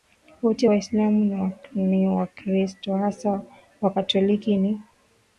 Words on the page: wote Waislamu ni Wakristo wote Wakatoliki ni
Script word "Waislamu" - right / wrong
right